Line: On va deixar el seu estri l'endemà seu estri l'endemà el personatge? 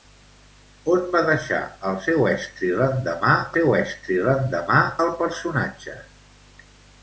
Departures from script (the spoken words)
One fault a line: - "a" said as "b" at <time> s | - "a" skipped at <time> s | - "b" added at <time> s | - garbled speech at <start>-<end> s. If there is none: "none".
none